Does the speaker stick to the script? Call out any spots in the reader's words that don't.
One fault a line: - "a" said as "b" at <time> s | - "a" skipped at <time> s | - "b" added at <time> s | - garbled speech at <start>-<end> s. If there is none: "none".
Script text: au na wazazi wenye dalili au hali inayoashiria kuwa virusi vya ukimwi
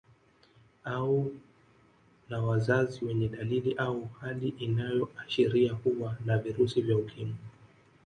- "na" added at 6.3 s